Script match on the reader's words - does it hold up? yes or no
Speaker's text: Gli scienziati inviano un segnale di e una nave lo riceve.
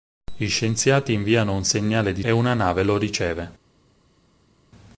yes